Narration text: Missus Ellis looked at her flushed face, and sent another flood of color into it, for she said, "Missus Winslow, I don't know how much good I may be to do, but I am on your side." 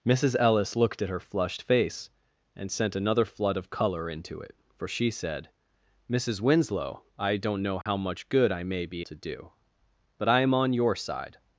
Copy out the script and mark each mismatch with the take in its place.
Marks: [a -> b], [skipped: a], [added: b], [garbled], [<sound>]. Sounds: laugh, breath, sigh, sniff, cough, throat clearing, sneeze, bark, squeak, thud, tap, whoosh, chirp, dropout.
Missus Ellis looked at her flushed face, and sent another flood of color into it, for she said, "Missus Winslow, I don't know how [dropout] much good I may be to do, but I am on your side."